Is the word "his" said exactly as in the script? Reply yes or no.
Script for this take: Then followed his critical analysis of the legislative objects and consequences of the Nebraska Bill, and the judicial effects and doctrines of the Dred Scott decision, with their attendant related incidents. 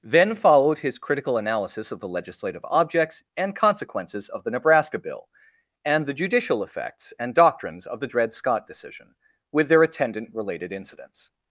yes